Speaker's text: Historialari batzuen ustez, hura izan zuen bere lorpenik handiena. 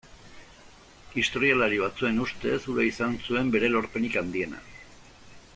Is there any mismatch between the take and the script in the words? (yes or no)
no